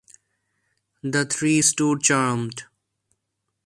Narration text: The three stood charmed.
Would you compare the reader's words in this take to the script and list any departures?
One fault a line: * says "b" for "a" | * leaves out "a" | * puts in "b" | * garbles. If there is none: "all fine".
all fine